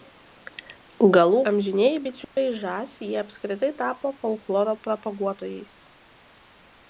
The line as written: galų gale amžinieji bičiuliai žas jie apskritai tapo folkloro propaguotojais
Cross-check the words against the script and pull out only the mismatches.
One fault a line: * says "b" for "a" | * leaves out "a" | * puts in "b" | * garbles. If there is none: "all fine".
* leaves out "gale"